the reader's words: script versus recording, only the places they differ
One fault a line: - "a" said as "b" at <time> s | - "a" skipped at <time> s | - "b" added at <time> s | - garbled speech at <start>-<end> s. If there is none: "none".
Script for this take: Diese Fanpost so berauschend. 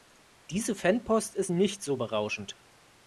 - "ist nicht" added at 1.4 s